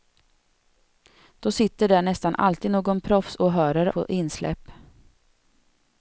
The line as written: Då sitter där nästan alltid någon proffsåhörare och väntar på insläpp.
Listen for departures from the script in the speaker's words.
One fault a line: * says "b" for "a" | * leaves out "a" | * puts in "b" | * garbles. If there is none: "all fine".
* leaves out "och väntar"